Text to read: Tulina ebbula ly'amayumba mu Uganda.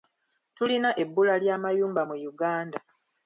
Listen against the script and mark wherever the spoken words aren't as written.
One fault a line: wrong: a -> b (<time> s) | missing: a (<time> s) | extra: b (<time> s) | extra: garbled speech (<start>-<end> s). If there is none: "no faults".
no faults